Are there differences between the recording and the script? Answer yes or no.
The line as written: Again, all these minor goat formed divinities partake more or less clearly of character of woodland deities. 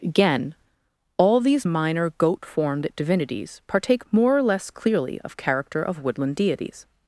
no